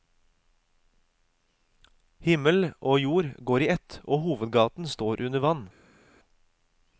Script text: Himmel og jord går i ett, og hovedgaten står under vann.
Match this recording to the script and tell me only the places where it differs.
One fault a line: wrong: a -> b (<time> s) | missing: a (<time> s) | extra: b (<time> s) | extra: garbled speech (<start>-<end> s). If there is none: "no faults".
no faults